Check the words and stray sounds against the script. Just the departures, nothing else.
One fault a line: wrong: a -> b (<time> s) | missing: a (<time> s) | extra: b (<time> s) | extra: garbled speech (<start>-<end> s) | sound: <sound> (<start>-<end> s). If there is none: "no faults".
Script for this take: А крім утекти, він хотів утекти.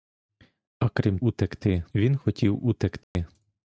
sound: dropout (3.0-3.2 s)